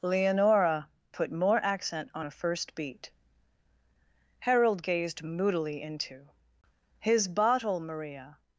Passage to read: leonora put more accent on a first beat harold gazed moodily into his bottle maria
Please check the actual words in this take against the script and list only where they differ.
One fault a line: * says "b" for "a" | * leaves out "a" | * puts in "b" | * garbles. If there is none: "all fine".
all fine